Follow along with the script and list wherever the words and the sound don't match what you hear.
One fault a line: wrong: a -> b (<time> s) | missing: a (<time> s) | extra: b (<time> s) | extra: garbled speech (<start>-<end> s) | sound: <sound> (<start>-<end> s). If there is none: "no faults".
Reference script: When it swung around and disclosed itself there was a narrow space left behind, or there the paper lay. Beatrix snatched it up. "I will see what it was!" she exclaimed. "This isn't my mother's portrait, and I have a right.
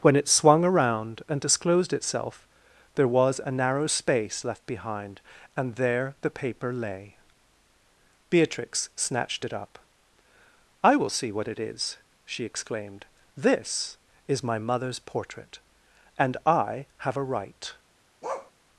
wrong: or -> and (5.5 s)
wrong: was -> is (11.6 s)
wrong: isn't -> is (14.3 s)
sound: bark (18.2-18.5 s)